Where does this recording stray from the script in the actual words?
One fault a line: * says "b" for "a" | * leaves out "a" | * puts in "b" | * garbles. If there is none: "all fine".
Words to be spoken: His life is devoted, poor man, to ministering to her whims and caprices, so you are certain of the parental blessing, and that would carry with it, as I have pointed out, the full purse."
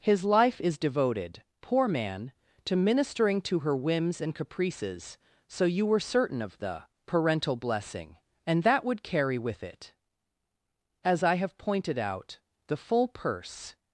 * says "were" for "are"